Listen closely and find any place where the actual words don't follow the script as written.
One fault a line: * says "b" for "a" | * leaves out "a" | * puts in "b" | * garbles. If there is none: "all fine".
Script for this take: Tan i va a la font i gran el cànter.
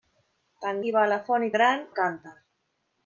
all fine